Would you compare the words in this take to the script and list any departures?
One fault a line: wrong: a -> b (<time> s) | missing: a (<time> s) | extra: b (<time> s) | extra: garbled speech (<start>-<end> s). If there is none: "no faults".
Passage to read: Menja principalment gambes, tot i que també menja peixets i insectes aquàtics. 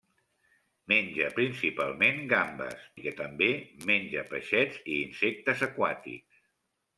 missing: tot (2.9 s)